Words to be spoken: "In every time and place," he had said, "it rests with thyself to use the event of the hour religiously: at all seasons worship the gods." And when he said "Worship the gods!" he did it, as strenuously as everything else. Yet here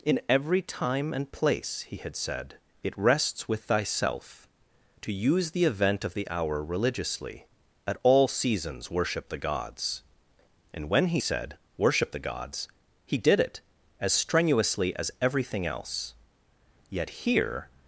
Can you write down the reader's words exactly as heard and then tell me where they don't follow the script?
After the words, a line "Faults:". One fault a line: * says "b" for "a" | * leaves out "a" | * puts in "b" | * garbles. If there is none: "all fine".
"In every time and place," he had said, "it rests with thyself to use the event of the hour religiously: at all seasons worship the gods." And when he said "Worship the gods!" he did it, as strenuously as everything else. Yet here
Faults:
all fine